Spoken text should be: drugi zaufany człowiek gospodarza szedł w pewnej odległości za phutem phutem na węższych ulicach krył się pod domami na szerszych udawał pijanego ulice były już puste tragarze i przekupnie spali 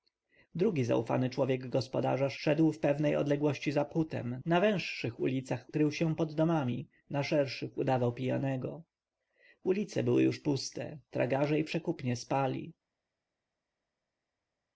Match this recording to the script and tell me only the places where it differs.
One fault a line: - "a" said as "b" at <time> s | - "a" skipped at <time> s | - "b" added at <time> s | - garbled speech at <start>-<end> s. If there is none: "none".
- "phutem" skipped at 4.4 s